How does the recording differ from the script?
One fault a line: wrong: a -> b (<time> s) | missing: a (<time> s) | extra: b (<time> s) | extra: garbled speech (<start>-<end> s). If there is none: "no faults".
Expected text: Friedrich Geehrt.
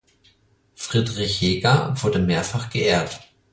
extra: Hegar wurde mehrfach (1.4 s)